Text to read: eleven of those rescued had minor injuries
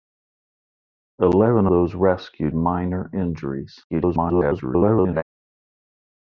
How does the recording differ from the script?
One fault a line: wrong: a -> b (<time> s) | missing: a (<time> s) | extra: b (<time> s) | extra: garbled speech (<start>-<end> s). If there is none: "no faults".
missing: of (1.7 s)
missing: had (2.5 s)
extra: garbled speech (3.9-5.2 s)